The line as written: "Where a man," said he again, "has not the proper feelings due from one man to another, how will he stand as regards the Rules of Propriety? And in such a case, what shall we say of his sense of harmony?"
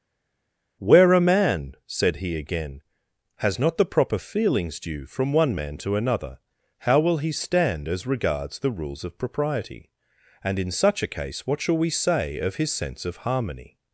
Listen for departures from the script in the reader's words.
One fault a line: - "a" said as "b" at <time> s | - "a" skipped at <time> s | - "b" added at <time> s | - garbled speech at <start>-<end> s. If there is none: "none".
none